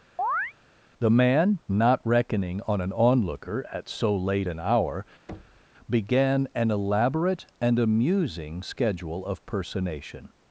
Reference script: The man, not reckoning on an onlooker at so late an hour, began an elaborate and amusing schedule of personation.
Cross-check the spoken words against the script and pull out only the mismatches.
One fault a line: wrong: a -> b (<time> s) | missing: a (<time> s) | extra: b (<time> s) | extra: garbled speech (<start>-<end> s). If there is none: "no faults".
no faults